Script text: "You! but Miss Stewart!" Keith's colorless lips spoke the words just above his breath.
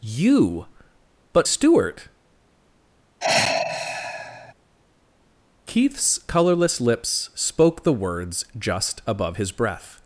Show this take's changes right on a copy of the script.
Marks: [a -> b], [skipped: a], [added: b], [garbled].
"You! but [skipped: Miss] Stewart!" Keith's colorless lips spoke the words just above his breath.